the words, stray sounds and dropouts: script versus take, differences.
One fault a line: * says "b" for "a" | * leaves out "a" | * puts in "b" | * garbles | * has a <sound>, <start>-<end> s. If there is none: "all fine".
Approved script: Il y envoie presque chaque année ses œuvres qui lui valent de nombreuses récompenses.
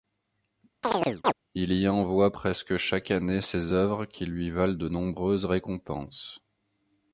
* has a chirp, 0.8-1.3 s